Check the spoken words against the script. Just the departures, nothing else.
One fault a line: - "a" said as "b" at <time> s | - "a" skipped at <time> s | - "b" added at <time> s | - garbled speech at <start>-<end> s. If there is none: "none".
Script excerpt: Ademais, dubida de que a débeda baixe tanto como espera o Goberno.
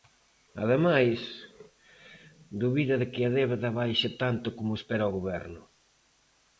none